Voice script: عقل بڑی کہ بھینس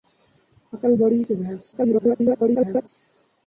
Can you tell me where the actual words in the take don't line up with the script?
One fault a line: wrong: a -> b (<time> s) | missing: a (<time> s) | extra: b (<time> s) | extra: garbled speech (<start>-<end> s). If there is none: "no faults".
extra: garbled speech (1.7-2.9 s)